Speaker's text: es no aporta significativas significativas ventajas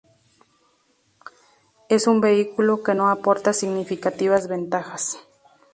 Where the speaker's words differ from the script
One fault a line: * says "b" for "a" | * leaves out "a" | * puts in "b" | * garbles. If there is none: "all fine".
* puts in "un vehículo que"
* leaves out "significativas"